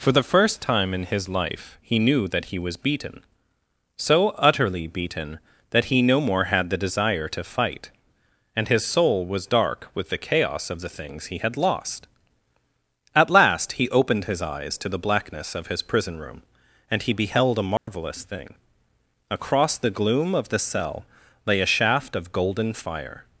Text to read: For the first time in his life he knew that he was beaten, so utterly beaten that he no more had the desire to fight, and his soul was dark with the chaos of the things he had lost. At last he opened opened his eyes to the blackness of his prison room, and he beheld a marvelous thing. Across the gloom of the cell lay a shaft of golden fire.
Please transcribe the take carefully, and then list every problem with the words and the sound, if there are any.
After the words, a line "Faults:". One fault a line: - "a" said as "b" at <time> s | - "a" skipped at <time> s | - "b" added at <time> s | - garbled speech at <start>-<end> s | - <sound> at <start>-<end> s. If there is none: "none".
For the first time in his life he knew that he was beaten, so utterly beaten that he no more had the desire to fight, and his soul was dark with the chaos of the things he had lost. At last he opened his eyes to the blackness of his prison room, and he beheld a marvelous thing. Across the gloom of the cell lay a shaft of golden fire.
Faults:
- "opened" skipped at 14.2 s
- dropout at 17.8-17.9 s